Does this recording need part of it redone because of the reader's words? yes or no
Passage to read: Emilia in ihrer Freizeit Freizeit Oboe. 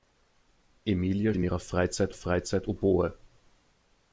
no